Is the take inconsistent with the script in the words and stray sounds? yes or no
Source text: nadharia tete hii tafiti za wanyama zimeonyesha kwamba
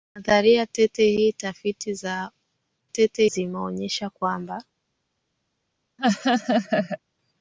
yes